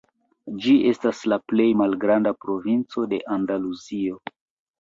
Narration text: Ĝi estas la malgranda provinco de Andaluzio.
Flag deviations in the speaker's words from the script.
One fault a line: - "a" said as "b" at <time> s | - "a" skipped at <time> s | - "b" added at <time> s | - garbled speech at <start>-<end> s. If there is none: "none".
- "plej" added at 1.5 s